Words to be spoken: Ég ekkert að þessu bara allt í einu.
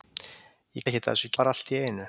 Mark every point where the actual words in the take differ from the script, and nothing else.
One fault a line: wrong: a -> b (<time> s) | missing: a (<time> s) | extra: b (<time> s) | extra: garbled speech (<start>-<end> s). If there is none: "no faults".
no faults